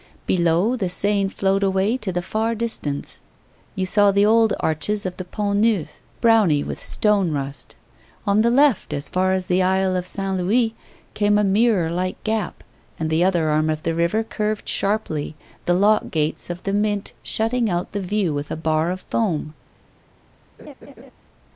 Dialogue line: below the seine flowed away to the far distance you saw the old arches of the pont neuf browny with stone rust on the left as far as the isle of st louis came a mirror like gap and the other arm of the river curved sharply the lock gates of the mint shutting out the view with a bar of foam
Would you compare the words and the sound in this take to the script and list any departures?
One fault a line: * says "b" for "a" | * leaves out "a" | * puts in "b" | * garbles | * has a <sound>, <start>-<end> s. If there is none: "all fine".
* has a laugh, 20.6-21.1 s